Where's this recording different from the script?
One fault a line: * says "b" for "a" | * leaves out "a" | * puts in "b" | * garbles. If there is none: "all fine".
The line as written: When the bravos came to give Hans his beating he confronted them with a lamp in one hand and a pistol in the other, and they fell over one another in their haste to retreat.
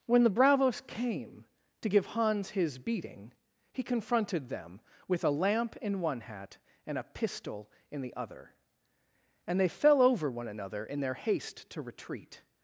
* says "hat" for "hand"